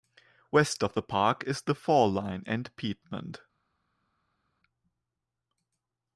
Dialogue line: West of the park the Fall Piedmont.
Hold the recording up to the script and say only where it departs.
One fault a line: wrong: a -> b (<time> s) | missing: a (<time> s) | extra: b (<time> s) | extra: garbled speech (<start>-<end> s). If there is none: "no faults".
extra: is (1.4 s)
extra: line and (2.1 s)